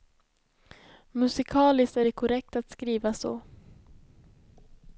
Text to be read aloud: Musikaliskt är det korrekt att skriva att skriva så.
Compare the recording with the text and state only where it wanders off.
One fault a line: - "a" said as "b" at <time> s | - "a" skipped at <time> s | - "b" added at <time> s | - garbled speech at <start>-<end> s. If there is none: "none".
- "att skriva" skipped at 3.1 s